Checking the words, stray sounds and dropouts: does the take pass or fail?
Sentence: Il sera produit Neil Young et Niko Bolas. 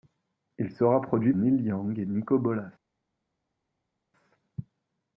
pass